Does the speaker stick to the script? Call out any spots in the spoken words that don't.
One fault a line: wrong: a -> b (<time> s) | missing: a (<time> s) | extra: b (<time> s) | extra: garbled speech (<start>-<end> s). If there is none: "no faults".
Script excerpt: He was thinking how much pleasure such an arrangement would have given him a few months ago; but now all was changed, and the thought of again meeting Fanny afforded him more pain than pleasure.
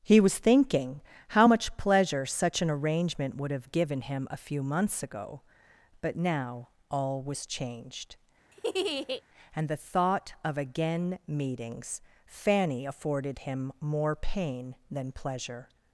wrong: meeting -> meetings (11.3 s)